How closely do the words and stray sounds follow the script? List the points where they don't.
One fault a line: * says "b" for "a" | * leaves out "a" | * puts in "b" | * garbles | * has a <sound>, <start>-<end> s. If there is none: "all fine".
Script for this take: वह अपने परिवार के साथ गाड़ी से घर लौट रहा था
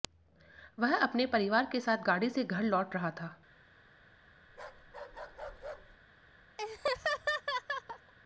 * has a bark, 4.5-6.0 s
* has a laugh, 6.6-8.1 s